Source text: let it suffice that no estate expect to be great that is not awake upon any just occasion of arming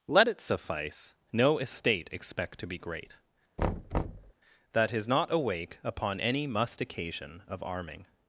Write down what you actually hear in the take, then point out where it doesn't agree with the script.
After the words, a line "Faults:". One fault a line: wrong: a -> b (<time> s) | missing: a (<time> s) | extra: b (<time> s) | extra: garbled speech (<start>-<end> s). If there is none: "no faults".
let it suffice no estate expect to be great that is not awake upon any must occasion of arming
Faults:
missing: that (1.1 s)
wrong: just -> must (6.5 s)